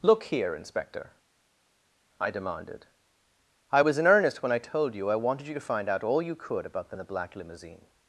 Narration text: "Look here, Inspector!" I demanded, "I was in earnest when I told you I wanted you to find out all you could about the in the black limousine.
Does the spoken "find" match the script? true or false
true